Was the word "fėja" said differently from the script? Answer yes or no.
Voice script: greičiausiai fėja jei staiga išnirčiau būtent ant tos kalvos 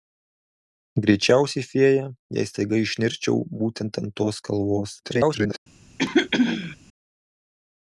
no